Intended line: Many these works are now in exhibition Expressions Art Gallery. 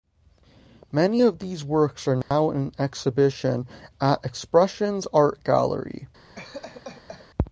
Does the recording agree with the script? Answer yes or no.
no